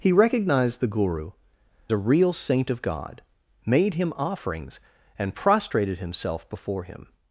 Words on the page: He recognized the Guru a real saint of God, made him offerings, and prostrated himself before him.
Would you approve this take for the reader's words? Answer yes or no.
yes